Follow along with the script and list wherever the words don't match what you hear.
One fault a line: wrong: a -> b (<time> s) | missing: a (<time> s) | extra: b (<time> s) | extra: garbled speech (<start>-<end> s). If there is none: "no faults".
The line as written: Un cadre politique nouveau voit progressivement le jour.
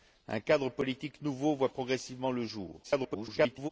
extra: garbled speech (2.8-3.7 s)